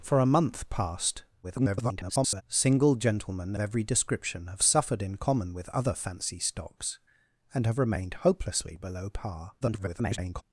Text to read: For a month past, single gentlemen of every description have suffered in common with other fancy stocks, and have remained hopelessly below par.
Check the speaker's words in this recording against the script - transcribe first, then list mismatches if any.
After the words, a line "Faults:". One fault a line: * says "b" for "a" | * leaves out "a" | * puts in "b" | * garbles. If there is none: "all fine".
For a month past, [garbled] single gentlemen every description have suffered in common with other fancy stocks, and have remained hopelessly below par. [garbled]
Faults:
* garbles
* leaves out "of"
* garbles